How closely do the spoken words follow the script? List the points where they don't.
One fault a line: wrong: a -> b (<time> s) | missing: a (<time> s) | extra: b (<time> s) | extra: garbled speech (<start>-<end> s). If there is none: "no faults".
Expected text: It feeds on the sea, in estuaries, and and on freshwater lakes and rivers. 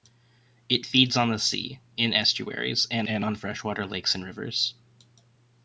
no faults